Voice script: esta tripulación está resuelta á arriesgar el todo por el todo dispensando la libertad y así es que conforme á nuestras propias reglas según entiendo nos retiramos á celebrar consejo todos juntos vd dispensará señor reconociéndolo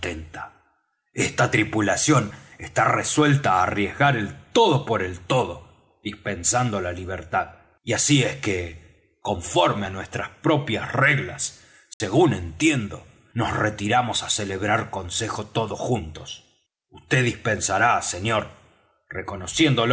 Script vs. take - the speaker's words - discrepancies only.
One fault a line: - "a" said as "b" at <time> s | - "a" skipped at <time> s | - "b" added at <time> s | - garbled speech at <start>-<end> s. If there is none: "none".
none